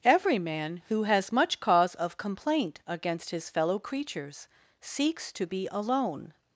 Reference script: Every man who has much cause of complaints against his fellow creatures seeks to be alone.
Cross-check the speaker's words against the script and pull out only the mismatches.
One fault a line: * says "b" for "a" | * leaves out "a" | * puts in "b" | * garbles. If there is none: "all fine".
* says "complaint" for "complaints"